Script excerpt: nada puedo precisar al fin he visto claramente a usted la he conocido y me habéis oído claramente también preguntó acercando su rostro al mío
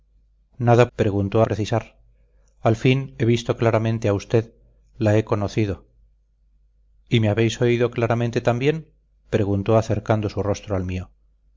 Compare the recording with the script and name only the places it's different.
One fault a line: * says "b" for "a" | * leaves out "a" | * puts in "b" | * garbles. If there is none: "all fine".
* says "preguntó" for "puedo"